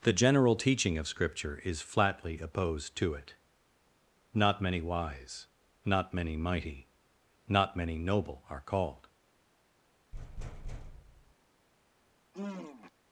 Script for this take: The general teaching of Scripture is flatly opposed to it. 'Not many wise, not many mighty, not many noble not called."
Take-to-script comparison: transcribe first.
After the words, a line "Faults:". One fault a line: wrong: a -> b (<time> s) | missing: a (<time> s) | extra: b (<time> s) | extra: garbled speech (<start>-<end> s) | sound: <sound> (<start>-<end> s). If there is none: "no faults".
The general teaching of Scripture is flatly opposed to it. 'Not many wise, not many mighty, not many noble are called."
Faults:
wrong: not -> are (8.5 s)
sound: thud (10.1-11.4 s)
sound: sigh (12.3-12.9 s)